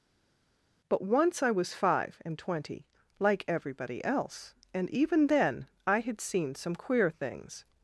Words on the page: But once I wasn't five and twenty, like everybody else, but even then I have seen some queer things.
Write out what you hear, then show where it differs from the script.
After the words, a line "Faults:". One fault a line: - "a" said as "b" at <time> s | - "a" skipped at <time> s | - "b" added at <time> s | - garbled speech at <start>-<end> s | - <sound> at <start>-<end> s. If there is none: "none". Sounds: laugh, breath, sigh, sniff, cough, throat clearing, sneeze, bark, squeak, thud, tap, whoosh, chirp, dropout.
But once I was five and twenty, like everybody else, and even then I had seen some queer things.
Faults:
- "wasn't" said as "was" at 1.5 s
- "but" said as "and" at 4.7 s
- "have" said as "had" at 6.0 s